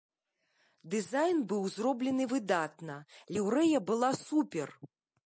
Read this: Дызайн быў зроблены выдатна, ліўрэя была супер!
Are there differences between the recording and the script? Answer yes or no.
no